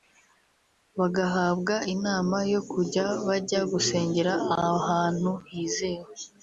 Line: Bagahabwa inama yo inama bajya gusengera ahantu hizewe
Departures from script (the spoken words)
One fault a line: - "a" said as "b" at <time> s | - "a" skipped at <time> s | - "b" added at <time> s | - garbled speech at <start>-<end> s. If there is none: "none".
- "inama" said as "kujya" at 2.7 s